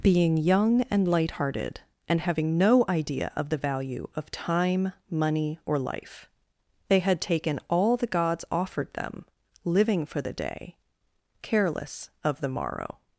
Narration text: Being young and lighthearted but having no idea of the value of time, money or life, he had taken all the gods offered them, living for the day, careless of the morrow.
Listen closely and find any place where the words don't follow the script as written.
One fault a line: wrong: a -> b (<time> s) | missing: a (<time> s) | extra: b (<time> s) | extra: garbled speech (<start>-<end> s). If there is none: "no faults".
wrong: but -> and (2.1 s)
wrong: he -> they (6.9 s)